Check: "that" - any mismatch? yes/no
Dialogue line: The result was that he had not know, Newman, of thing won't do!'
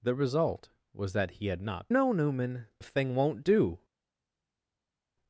no